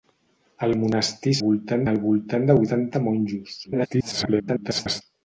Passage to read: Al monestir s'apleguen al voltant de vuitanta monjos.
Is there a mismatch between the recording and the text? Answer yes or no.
yes